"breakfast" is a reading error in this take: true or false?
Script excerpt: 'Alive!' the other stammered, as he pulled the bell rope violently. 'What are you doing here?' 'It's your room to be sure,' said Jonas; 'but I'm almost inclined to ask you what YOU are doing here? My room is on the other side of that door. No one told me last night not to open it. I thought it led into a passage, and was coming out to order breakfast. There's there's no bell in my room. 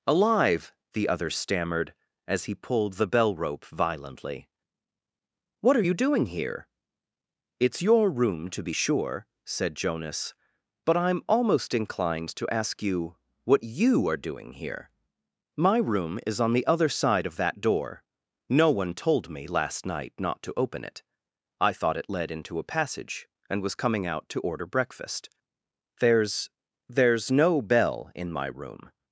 false